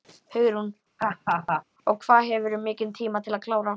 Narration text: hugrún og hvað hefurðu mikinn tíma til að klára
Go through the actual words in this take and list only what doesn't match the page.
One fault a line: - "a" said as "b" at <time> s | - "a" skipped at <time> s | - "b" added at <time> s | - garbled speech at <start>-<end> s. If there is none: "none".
none